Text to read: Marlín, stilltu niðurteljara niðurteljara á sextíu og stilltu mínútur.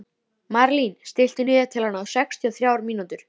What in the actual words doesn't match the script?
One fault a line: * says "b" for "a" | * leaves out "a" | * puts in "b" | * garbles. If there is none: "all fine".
* leaves out "niðurteljara"
* says "þrjár" for "stilltu"